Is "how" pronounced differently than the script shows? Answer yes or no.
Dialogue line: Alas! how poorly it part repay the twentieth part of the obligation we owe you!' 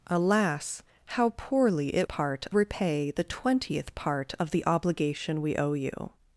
no